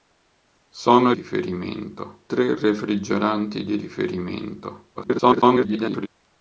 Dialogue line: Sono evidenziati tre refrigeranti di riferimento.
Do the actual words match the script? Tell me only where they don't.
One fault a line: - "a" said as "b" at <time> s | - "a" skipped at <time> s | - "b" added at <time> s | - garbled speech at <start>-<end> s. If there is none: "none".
- "evidenziati" said as "riferimento" at 1.1 s
- garbled speech at 4.9-6.1 s